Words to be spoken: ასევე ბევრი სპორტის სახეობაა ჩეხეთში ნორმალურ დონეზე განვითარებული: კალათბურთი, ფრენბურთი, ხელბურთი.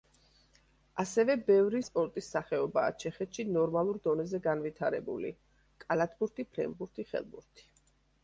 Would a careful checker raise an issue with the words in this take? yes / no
no